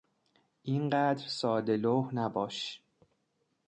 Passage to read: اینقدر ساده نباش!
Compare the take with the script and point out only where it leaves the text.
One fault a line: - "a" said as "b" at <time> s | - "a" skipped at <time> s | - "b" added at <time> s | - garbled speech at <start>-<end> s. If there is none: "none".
- "لوح" added at 1.8 s